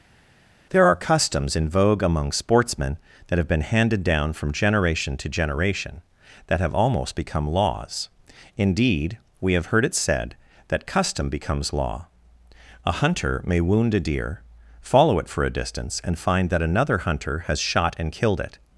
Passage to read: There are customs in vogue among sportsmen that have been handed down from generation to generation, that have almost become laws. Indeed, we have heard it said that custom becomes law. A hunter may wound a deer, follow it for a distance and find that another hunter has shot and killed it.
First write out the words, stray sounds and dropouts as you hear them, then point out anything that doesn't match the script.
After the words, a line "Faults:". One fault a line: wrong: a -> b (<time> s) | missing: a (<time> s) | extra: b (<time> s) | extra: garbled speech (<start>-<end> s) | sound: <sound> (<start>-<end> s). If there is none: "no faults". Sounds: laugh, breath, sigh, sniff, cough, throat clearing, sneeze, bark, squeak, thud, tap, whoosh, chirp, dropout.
There are customs in vogue among sportsmen that have been handed down from generation to generation, that have almost become laws. Indeed, we have heard it said that custom becomes law. A hunter may wound a deer, follow it for a distance and find that another hunter has shot and killed it.
Faults:
no faults